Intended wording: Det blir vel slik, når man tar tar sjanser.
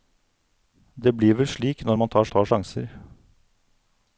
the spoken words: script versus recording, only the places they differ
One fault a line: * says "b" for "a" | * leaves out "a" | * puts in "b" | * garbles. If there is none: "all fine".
all fine